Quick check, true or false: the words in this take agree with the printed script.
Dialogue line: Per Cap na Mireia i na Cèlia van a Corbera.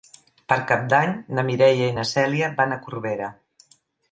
false